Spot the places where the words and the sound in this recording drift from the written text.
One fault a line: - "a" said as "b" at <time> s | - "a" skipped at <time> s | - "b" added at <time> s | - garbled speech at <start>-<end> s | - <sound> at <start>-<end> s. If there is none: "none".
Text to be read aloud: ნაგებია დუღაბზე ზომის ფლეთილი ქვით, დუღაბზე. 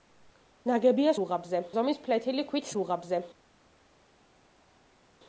none